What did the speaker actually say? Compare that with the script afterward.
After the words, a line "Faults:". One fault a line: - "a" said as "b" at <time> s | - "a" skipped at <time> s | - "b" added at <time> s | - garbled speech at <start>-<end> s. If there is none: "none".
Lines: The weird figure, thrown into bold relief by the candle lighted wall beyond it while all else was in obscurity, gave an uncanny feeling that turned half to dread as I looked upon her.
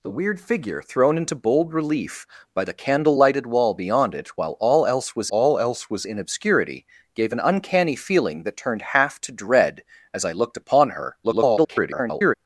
The weird figure, thrown into bold relief by the candle lighted wall beyond it while all else was all else was in obscurity, gave an uncanny feeling that turned half to dread as I looked upon her. [garbled]
Faults:
- "all else was" added at 5.3 s
- garbled speech at 11.2-12.3 s